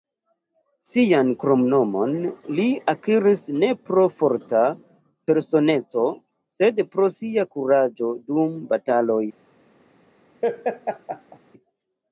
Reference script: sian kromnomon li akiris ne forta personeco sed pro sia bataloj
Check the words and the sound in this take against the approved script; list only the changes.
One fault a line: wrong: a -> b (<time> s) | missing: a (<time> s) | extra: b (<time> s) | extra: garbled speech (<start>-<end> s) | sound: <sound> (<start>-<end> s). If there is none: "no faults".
extra: pro (3.9 s)
extra: kuraĝo dum (7.6 s)
sound: laugh (10.4-11.4 s)